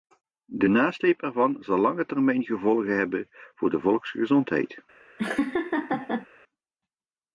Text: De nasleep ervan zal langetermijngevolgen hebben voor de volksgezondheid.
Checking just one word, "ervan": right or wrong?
right